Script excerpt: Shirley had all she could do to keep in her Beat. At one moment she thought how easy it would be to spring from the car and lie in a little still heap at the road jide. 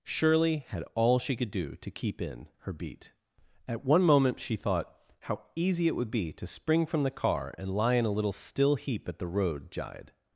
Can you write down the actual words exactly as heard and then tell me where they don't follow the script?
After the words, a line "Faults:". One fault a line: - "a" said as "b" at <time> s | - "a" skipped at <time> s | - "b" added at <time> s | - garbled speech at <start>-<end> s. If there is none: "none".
Shirley had all she could do to keep in her Beat. At one moment she thought how easy it would be to spring from the car and lie in a little still heap at the road jide.
Faults:
none